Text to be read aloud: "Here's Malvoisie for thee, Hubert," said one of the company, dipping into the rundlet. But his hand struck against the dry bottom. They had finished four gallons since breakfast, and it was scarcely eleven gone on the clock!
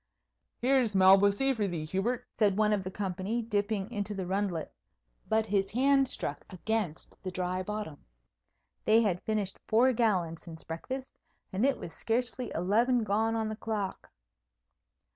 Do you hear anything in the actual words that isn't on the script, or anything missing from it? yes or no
no